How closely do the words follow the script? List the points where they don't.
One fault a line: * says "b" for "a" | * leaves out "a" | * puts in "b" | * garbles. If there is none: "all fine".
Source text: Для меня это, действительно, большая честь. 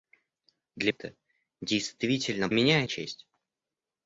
* leaves out "меня"
* says "меня" for "большая"